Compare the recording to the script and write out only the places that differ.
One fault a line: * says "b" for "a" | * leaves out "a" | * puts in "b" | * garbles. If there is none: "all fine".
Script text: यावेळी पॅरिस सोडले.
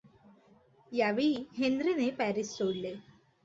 * puts in "हेन्रीने"